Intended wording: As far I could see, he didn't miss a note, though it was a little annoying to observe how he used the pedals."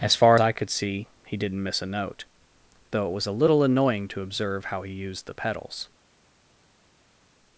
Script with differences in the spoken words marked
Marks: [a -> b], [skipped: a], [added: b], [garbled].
As far I could see, he didn't miss a note, though it was a little annoying to observe how he used the pedals."